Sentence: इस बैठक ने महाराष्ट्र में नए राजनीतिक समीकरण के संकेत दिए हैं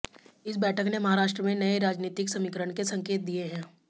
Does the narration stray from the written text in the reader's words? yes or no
no